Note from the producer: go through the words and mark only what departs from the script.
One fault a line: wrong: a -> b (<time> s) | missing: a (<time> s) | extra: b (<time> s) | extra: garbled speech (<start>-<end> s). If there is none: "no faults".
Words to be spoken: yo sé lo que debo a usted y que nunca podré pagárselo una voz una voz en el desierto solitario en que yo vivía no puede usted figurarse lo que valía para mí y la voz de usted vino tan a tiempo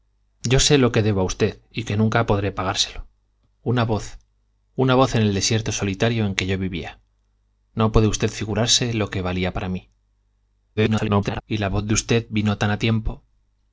extra: garbled speech (10.8-11.4 s)